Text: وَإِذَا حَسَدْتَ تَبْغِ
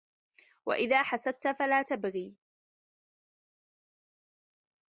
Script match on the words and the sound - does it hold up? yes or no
no